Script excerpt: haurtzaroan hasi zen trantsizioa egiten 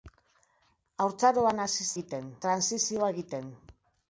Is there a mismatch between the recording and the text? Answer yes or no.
yes